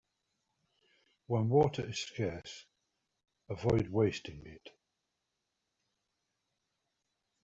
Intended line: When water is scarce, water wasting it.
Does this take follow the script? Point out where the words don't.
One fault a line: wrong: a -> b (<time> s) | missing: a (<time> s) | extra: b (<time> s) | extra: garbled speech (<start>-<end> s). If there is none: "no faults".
wrong: water -> avoid (3.5 s)